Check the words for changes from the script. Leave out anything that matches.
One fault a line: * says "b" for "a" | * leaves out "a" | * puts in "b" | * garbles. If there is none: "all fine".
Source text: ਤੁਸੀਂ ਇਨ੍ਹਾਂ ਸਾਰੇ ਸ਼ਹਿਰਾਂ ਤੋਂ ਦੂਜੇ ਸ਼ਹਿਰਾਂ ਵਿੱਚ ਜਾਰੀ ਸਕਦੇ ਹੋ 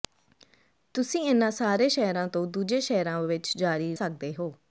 all fine